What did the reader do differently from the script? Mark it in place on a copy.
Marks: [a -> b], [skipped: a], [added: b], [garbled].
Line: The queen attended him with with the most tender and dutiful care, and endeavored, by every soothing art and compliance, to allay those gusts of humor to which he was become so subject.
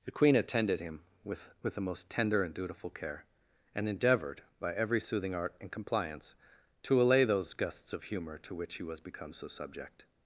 The queen attended him with with the most tender and dutiful care, and endeavored, by every soothing art and compliance, to allay those gusts of humor to which he was become so subject.